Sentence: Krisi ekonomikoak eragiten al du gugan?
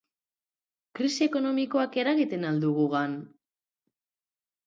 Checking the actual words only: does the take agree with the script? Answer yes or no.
yes